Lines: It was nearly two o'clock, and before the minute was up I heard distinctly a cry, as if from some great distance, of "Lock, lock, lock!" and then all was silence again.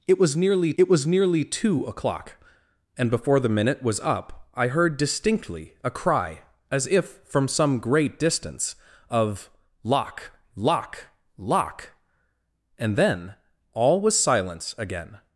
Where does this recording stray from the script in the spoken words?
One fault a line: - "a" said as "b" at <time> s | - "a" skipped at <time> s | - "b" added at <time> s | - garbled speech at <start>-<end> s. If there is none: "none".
- "it was nearly" added at 0.8 s